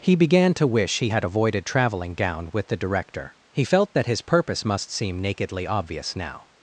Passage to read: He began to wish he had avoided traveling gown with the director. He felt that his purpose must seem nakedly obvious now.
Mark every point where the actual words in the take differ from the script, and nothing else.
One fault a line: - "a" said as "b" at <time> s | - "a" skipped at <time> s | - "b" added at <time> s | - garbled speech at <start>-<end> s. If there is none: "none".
none